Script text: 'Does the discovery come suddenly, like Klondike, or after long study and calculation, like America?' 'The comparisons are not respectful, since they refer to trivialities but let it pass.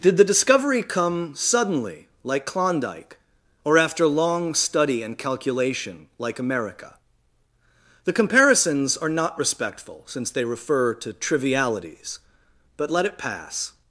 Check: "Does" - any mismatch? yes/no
yes